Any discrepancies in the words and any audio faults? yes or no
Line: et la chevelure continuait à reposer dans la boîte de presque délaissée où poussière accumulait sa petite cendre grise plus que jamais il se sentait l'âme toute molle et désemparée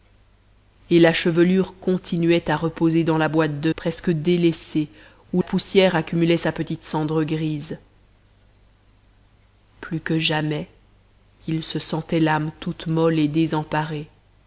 no